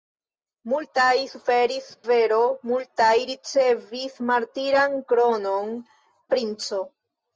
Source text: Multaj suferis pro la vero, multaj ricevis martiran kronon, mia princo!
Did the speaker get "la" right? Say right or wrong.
wrong